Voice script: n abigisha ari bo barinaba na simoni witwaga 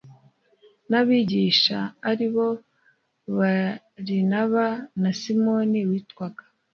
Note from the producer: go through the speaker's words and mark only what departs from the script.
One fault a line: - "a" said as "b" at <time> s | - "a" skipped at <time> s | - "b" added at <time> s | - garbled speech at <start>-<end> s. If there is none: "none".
none